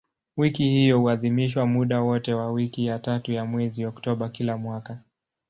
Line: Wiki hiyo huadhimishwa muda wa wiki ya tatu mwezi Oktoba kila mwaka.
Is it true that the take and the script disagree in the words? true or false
true